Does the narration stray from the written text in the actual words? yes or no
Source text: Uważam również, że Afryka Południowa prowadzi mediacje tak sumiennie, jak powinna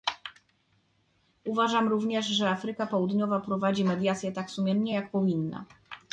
no